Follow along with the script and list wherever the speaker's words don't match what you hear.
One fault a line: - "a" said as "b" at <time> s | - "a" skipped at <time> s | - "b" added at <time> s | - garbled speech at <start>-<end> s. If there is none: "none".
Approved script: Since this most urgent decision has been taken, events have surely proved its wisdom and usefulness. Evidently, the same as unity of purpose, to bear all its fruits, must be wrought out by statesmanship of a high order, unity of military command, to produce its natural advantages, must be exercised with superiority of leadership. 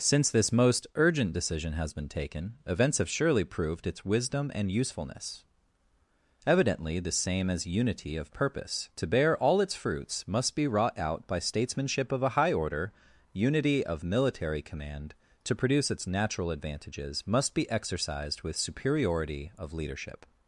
none